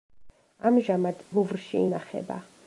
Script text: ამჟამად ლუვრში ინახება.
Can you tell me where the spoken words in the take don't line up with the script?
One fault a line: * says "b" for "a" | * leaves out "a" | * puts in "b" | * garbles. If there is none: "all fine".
all fine